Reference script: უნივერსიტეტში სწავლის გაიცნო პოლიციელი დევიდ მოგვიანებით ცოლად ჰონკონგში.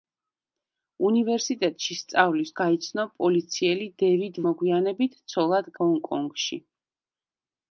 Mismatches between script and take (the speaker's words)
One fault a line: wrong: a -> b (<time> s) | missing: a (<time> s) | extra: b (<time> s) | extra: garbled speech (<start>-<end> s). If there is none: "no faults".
no faults